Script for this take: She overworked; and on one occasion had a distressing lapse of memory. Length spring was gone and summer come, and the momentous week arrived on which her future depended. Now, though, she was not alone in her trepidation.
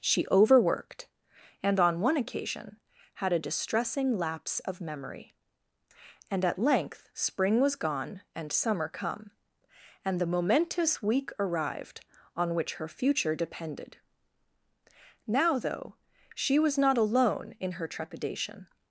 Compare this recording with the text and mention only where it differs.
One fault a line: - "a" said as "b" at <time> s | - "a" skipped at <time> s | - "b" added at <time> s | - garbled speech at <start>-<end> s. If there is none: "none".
- "And at" added at 6.3 s